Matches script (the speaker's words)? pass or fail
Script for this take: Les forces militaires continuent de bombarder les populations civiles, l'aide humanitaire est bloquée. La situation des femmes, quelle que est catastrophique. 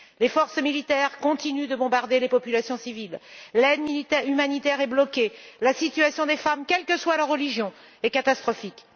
fail